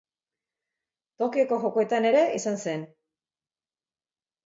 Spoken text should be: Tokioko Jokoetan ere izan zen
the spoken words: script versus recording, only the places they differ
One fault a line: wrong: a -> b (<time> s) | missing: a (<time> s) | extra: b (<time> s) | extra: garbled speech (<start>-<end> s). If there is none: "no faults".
no faults